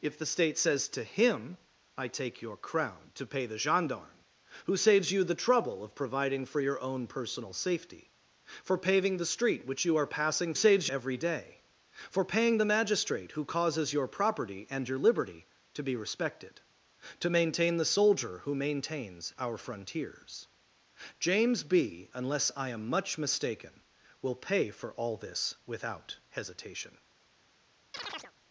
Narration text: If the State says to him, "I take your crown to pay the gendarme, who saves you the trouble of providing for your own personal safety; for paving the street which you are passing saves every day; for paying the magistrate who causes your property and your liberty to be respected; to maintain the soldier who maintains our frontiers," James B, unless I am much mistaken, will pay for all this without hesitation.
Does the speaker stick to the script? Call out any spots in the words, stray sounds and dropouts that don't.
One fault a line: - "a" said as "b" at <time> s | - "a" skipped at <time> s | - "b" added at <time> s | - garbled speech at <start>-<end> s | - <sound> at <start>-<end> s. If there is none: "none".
- chirp at 27.9-28.3 s